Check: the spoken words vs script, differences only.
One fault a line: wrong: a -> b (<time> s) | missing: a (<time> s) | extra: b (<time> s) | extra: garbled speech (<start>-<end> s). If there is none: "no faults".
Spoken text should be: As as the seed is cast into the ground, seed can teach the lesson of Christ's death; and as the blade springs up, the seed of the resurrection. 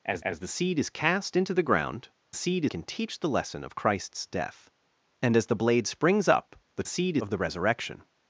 no faults